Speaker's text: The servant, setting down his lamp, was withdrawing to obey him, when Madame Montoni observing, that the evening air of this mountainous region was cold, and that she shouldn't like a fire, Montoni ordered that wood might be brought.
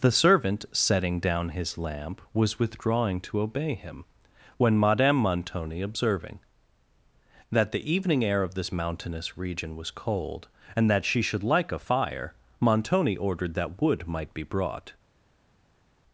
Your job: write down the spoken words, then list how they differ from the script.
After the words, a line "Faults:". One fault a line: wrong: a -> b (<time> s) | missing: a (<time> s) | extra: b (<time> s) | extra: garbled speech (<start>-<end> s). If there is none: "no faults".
The servant, setting down his lamp, was withdrawing to obey him, when Madame Montoni observing, that the evening air of this mountainous region was cold, and that she should like a fire, Montoni ordered that wood might be brought.
Faults:
wrong: shouldn't -> should (11.2 s)